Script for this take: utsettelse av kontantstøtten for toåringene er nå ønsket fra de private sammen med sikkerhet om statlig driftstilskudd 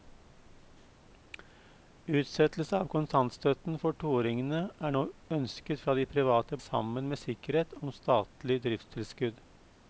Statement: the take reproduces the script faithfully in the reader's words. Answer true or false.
true